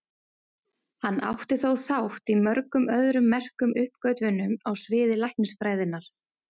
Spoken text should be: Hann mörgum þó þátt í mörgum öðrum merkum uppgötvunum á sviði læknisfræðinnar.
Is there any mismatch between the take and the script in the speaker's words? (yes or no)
yes